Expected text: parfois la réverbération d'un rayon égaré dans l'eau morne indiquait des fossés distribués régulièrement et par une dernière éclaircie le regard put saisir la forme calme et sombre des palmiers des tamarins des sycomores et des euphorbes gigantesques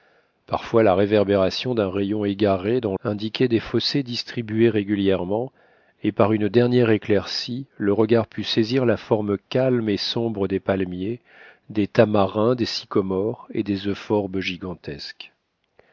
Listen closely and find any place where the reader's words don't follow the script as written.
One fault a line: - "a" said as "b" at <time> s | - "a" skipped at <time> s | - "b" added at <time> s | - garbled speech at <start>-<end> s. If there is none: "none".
- "l'eau morne" skipped at 3.0 s